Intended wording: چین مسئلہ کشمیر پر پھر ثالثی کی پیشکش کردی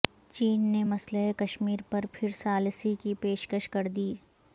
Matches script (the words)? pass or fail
fail